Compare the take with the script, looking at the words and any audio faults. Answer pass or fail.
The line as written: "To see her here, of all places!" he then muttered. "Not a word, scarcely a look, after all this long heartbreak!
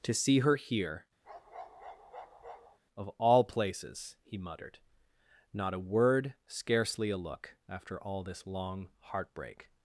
fail